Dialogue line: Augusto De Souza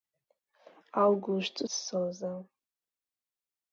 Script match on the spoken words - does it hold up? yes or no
yes